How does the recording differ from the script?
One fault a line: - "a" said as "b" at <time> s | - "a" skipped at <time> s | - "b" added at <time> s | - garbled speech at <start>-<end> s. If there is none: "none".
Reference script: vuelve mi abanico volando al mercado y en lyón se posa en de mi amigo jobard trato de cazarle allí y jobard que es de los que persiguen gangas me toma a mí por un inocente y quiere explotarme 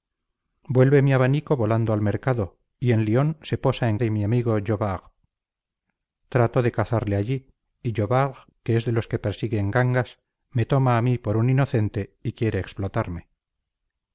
none